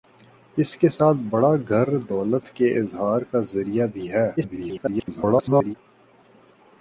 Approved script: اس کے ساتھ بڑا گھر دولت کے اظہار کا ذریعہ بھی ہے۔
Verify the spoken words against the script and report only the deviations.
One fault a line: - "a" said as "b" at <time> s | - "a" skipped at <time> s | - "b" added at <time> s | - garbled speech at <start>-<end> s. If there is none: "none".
- garbled speech at 4.4-5.7 s